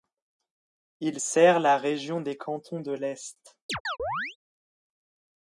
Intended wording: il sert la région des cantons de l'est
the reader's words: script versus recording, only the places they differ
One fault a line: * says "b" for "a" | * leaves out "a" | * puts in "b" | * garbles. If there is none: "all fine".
all fine